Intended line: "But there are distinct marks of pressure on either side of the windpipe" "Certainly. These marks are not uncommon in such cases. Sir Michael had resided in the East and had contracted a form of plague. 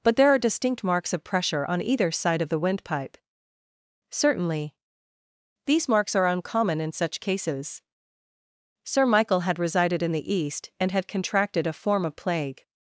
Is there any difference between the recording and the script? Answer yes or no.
yes